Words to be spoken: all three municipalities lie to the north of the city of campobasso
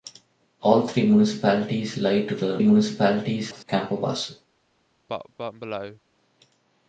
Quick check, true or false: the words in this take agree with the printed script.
false